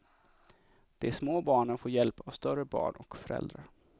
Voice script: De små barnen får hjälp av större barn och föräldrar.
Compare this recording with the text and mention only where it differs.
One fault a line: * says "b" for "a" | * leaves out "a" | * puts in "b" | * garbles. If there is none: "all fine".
all fine